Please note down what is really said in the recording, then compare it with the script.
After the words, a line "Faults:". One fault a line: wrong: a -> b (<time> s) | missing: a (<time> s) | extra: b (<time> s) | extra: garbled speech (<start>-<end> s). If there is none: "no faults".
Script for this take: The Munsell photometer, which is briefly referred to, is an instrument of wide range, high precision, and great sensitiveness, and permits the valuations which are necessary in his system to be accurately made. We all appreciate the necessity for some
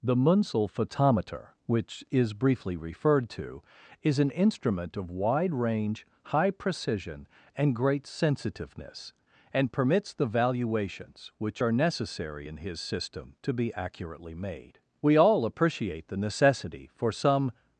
The Munsell photometer, which is briefly referred to, is an instrument of wide range, high precision, and great sensitiveness, and permits the valuations which are necessary in his system to be accurately made. We all appreciate the necessity for some
Faults:
no faults